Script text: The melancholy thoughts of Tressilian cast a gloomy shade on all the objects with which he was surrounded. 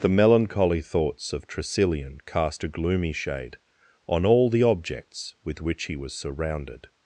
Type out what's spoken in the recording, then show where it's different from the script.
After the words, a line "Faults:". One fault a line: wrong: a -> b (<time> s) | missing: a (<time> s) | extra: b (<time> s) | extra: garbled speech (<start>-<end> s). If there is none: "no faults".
The melancholy thoughts of Tressilian cast a gloomy shade on all the objects with which he was surrounded.
Faults:
no faults